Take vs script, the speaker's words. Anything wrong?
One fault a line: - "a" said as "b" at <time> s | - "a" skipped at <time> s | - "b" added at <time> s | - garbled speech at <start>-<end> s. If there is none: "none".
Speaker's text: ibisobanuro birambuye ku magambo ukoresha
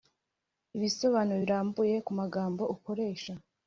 none